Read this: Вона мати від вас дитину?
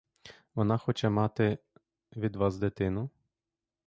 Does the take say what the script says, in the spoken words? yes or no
no